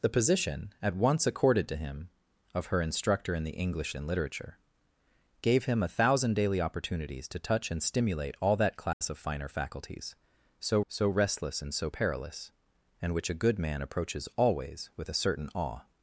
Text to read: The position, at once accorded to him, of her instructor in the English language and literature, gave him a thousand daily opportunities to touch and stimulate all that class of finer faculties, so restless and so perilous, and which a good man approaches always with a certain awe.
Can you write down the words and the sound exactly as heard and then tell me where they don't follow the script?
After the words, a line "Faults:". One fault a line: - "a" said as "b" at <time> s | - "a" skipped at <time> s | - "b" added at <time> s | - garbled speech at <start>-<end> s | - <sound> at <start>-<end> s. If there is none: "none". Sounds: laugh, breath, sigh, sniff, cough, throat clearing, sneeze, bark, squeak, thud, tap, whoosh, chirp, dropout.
The position, at once accorded to him, of her instructor in the English and literature, gave him a thousand daily opportunities to touch and stimulate all that class of finer faculties, so so restless and so perilous, and which a good man approaches always with a certain awe.
Faults:
- "language" skipped at 4.0 s
- dropout at 8.9-9.0 s
- "so" added at 10.9 s